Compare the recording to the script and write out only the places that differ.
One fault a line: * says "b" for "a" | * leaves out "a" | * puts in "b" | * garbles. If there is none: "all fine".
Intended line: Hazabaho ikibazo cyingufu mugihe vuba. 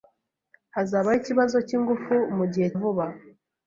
all fine